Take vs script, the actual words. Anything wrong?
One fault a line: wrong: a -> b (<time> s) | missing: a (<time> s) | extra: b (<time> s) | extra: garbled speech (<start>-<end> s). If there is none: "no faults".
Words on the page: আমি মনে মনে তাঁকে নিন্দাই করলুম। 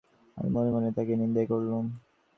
no faults